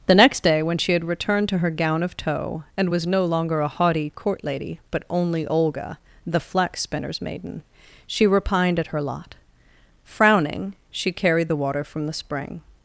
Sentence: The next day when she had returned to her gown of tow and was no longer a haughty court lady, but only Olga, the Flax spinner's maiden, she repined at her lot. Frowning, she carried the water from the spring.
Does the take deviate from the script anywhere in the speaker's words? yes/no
no